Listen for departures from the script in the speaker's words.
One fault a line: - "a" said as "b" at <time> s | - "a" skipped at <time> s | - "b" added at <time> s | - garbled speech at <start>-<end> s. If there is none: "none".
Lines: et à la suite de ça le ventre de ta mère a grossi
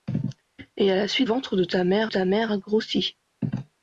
- "ventre" added at 1.2 s
- "ça le ventre de" said as "ta mère" at 1.6 s